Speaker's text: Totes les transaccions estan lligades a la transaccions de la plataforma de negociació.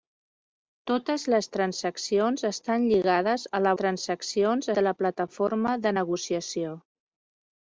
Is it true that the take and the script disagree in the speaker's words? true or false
false